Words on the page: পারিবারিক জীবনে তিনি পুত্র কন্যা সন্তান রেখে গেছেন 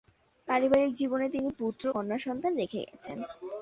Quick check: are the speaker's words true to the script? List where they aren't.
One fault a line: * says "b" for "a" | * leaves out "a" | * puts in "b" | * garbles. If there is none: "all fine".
all fine